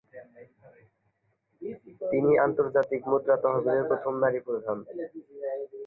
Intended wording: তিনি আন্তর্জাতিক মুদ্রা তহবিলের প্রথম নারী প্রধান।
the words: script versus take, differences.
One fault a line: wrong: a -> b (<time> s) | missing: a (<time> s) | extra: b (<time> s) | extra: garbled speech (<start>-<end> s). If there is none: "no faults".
no faults